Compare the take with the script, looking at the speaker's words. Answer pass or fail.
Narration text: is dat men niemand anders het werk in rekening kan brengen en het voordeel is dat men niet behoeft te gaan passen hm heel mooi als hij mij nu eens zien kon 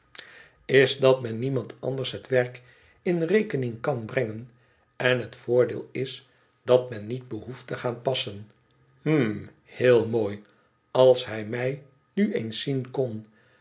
pass